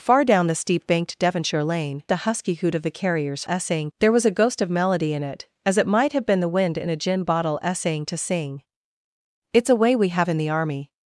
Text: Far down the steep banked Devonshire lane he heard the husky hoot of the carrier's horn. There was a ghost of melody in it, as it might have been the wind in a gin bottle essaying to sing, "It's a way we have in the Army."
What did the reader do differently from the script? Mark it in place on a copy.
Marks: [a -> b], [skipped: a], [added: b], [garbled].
Far down the steep banked Devonshire lane [skipped: he heard] the husky hoot of the carrier's [horn. -> essaying] There was a ghost of melody in it, as it might have been the wind in a gin bottle essaying to sing, "It's a way we have in the Army."